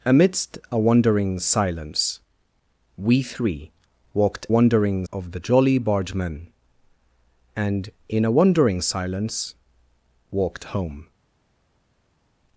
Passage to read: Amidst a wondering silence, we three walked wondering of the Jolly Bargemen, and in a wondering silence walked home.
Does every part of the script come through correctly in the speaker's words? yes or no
yes